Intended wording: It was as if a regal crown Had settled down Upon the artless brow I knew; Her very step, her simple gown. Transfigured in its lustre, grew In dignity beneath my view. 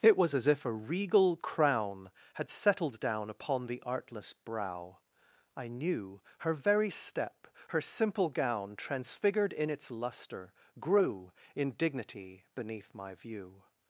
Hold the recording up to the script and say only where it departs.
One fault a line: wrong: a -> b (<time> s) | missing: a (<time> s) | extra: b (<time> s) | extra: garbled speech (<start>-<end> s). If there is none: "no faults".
no faults